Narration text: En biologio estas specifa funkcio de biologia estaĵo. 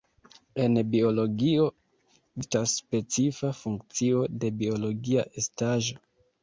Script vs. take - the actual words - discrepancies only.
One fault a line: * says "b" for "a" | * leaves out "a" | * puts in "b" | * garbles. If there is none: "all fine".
all fine